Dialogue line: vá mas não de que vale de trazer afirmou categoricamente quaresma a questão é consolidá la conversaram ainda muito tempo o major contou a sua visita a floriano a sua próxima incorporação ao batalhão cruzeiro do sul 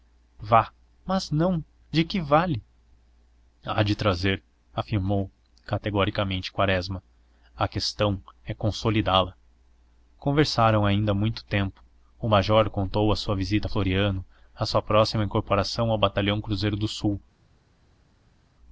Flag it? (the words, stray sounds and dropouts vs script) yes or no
yes